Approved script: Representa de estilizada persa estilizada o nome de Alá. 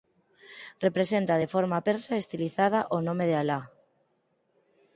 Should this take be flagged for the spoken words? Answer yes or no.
yes